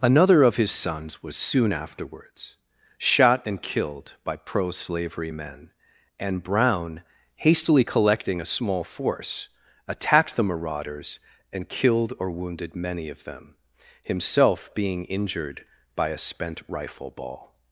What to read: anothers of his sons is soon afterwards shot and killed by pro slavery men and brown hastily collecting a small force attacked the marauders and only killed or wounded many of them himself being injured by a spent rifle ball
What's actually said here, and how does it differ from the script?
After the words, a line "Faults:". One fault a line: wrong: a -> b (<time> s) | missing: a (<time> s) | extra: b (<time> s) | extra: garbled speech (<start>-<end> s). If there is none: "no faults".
another of his sons was soon afterwards shot and killed by pro slavery men and brown hastily collecting a small force attacked the marauders and killed or wounded many of them himself being injured by a spent rifle ball
Faults:
wrong: anothers -> another (0.0 s)
wrong: is -> was (1.2 s)
missing: only (11.7 s)